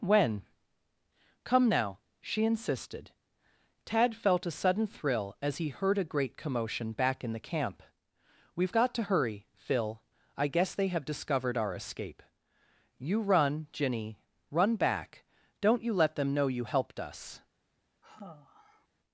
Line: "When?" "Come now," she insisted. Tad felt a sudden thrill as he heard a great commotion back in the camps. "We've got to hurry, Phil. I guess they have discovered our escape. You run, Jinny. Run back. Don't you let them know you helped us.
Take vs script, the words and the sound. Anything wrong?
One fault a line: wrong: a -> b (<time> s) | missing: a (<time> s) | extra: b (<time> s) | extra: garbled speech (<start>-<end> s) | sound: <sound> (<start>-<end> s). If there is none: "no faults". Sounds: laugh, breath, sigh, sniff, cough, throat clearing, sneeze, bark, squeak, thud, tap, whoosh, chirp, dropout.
wrong: camps -> camp (7.4 s)
sound: sigh (18.0-18.9 s)